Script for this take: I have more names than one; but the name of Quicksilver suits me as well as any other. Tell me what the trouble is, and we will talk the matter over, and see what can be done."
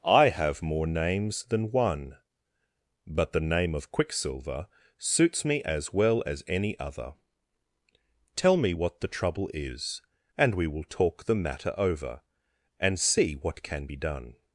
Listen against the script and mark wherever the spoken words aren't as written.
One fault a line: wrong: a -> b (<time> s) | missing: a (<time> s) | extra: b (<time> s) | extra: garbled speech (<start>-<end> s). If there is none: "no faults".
no faults